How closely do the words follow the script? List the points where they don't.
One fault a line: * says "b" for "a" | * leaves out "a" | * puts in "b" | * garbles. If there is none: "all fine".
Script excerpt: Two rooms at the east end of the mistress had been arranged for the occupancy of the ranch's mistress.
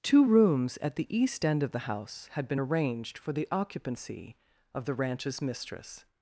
* says "house" for "mistress"